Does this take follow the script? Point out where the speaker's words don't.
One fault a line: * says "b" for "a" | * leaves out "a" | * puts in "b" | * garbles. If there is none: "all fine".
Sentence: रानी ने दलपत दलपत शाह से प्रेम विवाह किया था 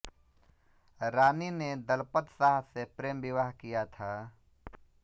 * leaves out "दलपत"